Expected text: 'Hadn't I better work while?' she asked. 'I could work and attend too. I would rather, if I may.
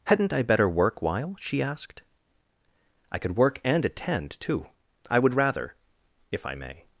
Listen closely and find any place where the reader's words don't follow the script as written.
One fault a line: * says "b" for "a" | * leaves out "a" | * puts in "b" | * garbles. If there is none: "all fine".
all fine